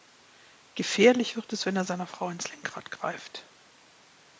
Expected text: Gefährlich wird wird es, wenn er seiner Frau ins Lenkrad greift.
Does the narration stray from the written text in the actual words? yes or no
yes